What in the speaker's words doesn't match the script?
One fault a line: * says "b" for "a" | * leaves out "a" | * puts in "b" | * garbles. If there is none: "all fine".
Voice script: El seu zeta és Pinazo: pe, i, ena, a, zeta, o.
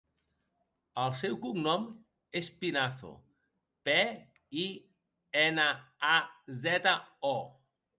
* says "cognom" for "zeta"